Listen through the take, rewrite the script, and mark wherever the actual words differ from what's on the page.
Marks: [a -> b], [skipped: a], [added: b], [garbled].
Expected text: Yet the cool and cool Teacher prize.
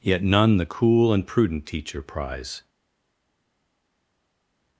Yet [added: none] the cool and [cool -> prudent] Teacher prize.